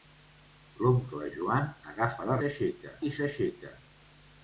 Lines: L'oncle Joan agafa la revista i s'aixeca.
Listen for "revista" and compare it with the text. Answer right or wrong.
wrong